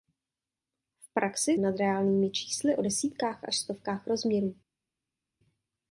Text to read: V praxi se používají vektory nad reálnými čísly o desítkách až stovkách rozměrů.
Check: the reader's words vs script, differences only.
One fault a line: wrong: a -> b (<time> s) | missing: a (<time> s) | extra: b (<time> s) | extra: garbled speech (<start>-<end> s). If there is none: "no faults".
missing: se používají vektory (1.6 s)